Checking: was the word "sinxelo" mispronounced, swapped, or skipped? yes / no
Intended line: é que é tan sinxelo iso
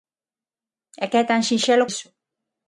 no